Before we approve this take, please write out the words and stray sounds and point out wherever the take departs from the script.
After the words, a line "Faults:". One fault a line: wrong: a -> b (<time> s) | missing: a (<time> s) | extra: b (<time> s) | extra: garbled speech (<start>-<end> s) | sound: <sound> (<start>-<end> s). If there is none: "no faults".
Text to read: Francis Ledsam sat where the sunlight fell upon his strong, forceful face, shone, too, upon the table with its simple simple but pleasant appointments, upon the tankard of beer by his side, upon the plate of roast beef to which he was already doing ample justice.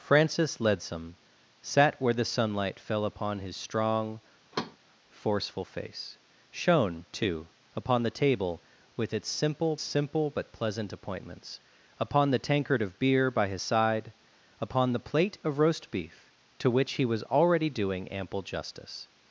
Francis Ledsam sat where the sunlight fell upon his strong, forceful face, shone, too, upon the table with its simple simple but pleasant appointments, upon the tankard of beer by his side, upon the plate of roast beef to which he was already doing ample justice.
Faults:
sound: thud (4.5-4.8 s)